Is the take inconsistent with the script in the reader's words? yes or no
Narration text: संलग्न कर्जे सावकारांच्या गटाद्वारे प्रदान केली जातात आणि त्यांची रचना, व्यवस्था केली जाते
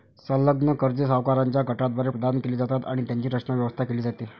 no